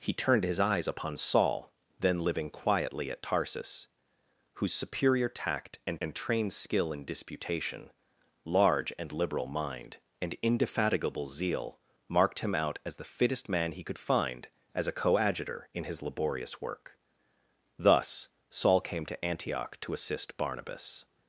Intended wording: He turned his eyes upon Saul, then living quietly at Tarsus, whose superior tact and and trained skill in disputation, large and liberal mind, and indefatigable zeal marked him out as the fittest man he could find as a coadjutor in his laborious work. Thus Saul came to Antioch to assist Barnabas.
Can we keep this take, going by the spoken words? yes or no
yes